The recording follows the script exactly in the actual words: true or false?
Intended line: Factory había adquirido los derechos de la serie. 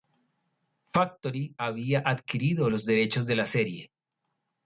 true